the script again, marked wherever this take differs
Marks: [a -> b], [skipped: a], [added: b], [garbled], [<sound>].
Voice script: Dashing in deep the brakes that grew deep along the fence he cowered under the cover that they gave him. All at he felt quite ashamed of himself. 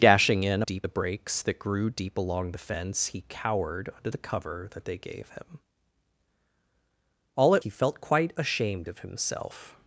Dashing in deep the brakes that grew deep along the fence he cowered under the cover that they gave him. All at he felt quite ashamed of himself.